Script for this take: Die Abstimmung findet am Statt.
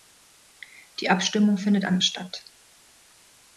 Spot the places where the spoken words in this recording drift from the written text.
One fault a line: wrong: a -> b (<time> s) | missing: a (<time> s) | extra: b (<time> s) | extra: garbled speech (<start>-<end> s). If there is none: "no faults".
no faults